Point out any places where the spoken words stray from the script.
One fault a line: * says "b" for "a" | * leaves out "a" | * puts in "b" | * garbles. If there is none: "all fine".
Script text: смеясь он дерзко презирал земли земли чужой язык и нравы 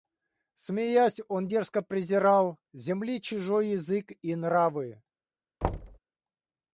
* leaves out "земли"